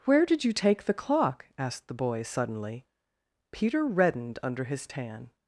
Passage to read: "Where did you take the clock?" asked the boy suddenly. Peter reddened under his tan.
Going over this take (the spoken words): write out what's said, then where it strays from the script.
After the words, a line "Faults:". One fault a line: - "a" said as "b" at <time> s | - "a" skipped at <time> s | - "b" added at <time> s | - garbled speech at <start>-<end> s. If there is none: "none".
"Where did you take the clock?" asked the boy suddenly. Peter reddened under his tan.
Faults:
none